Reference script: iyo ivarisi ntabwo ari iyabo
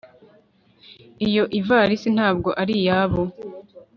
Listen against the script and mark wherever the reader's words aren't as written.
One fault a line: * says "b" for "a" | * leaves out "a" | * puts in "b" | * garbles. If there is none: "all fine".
all fine